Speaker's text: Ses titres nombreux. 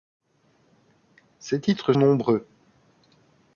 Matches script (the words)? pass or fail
pass